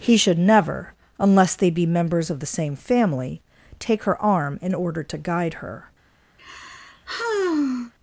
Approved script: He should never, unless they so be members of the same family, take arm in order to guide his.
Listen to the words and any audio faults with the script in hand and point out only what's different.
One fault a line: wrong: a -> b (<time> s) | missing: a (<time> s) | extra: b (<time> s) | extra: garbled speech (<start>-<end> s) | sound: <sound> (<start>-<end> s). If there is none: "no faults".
missing: so (1.7 s)
extra: her (4.0 s)
wrong: his -> her (5.6 s)
sound: sigh (6.4-7.9 s)